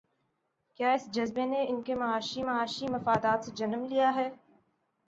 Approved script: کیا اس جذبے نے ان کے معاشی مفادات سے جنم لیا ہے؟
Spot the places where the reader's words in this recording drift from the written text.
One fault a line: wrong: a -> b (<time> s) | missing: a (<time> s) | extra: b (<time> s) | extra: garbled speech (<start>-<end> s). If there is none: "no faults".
extra: معاشی (2.4 s)